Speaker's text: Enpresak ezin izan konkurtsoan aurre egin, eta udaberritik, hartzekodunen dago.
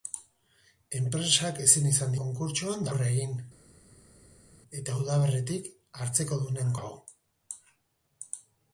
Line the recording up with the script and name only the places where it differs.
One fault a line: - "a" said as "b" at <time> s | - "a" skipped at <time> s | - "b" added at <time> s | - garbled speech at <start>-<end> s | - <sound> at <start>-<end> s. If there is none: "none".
none